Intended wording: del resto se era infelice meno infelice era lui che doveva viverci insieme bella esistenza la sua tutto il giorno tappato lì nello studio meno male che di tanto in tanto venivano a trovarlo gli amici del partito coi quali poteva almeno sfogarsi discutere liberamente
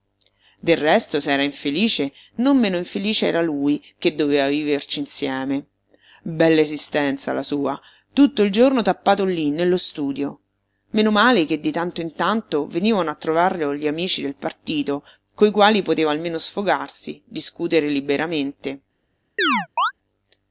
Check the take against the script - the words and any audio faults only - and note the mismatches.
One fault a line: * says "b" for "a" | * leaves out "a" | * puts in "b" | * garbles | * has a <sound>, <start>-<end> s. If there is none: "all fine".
* puts in "non"
* has a chirp, 19.4-19.9 s